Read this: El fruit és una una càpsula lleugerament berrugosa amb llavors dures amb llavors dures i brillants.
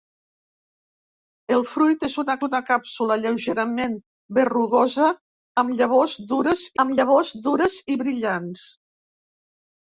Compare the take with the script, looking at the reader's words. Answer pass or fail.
pass